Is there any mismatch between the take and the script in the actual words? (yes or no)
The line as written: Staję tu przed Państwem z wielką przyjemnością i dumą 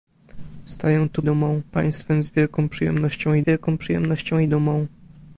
yes